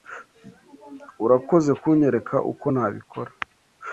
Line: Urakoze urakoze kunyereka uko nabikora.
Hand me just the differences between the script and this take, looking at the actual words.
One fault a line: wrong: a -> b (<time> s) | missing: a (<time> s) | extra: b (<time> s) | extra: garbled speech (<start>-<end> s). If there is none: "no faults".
missing: urakoze (1.7 s)